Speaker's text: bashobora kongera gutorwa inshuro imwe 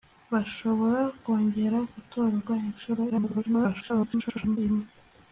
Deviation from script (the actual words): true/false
true